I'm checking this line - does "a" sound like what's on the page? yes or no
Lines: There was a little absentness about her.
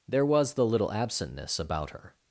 no